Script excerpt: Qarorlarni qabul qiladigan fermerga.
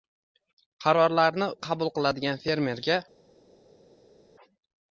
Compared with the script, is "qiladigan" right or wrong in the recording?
right